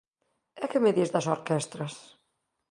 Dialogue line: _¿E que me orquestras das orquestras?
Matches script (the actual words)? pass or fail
fail